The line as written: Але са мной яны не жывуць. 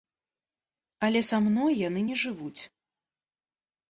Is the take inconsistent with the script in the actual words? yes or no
no